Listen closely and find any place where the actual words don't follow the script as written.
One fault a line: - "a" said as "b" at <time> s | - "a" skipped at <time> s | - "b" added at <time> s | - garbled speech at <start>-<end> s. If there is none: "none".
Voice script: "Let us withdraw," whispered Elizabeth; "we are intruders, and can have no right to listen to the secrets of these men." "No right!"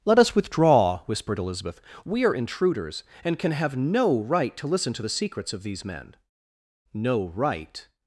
none